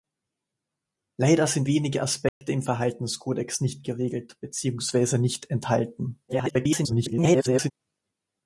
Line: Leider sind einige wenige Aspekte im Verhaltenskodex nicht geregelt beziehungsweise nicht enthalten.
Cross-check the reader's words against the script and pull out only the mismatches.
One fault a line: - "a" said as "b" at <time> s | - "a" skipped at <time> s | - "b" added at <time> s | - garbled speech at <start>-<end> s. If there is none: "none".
- "einige" skipped at 1.7 s
- garbled speech at 6.3-7.7 s